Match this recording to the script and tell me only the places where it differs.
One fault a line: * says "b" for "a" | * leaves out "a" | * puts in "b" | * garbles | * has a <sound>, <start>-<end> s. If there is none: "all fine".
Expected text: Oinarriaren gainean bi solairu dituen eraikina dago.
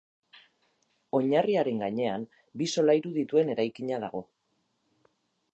all fine